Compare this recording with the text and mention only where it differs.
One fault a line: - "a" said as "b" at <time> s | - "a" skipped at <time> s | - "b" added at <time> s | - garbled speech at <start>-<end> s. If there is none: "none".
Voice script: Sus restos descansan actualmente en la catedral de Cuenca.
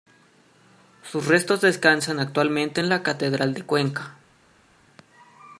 none